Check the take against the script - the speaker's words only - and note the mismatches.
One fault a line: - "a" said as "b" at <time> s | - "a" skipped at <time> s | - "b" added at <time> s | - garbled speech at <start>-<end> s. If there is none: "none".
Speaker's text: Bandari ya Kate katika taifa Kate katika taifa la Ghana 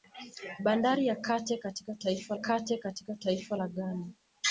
none